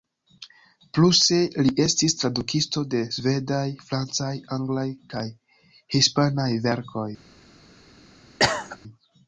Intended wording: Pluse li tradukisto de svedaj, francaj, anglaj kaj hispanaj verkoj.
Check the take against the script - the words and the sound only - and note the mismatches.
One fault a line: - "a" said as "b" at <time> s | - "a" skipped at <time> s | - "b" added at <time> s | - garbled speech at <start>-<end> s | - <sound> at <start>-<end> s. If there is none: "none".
- "estis" added at 1.8 s
- cough at 8.4-8.8 s